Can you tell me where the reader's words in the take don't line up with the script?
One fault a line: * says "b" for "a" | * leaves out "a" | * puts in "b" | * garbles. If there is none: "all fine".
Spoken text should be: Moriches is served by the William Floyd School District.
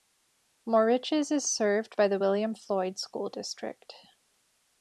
all fine